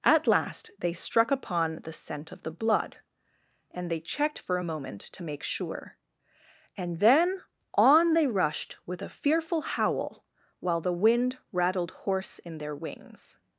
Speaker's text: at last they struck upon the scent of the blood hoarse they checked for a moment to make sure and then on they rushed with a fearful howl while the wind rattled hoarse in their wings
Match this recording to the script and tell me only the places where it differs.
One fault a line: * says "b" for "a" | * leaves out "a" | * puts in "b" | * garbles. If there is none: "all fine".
* says "and" for "hoarse"